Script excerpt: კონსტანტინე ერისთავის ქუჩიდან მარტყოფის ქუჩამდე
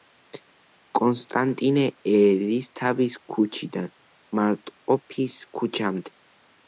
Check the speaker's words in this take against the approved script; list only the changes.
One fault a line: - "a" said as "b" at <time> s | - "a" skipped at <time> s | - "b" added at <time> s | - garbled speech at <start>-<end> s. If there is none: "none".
none